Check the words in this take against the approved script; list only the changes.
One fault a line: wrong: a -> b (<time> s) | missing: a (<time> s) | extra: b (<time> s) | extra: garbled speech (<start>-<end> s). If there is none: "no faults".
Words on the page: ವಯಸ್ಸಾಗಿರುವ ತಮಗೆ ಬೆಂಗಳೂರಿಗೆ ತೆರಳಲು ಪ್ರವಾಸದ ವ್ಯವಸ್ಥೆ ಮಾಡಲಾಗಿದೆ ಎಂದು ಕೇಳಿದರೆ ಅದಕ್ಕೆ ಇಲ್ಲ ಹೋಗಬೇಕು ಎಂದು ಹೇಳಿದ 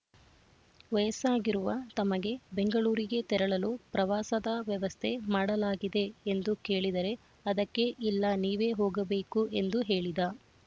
extra: ನೀವೇ (8.4 s)